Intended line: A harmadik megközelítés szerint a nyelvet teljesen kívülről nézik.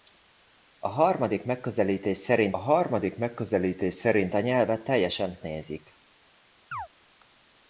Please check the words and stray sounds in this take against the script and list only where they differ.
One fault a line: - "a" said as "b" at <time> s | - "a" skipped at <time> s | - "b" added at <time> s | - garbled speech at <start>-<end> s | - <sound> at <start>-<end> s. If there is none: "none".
- "harmadik megközelítés szerint" added at 2.6 s
- "kívülről" skipped at 5.4 s
- chirp at 6.7-6.9 s